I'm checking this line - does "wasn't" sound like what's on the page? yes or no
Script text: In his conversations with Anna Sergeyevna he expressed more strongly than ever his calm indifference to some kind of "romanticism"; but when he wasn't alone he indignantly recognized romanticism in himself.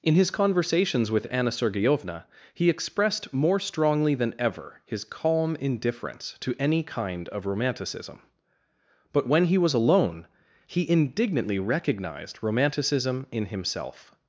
no